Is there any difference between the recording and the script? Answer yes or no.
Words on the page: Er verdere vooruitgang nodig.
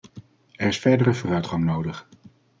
yes